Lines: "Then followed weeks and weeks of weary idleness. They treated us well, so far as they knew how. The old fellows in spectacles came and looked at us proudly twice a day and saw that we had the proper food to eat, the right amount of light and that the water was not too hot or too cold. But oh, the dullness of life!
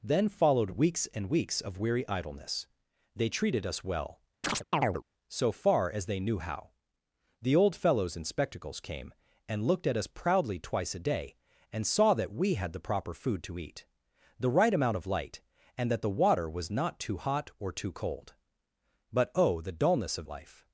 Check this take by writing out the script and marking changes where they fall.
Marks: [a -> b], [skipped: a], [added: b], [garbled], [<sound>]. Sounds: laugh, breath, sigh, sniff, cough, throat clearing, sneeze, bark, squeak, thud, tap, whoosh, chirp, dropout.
"Then followed weeks and weeks of weary idleness. They treated us well, [chirp] so far as they knew how. The old fellows in spectacles came and looked at us proudly twice a day and saw that we had the proper food to eat, the right amount of light and that the water was not too hot or too cold. But oh, the dullness of life!